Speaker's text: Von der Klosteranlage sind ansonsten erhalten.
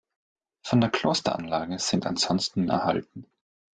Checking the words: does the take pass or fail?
pass